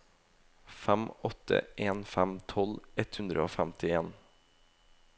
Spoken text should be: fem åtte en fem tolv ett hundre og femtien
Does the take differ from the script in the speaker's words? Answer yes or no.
no